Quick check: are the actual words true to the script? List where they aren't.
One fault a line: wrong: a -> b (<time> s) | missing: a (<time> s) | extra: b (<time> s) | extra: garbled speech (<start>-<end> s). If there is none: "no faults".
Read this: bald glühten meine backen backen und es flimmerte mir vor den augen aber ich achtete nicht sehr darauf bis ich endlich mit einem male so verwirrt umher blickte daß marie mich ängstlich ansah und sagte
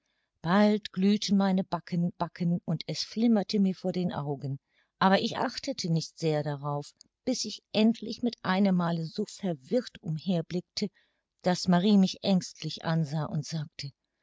no faults